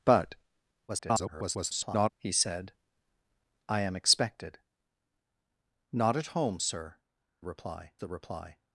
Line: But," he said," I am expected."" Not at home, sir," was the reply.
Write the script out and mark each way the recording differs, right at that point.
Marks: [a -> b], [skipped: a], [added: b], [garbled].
But," [garbled] he said," I am expected."" Not at home, sir," [was -> reply] the reply.